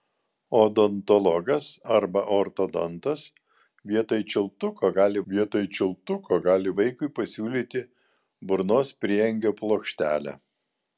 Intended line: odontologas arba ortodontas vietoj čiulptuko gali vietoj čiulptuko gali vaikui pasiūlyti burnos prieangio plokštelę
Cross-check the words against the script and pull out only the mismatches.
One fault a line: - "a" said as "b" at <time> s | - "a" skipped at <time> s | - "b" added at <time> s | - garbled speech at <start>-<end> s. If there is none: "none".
none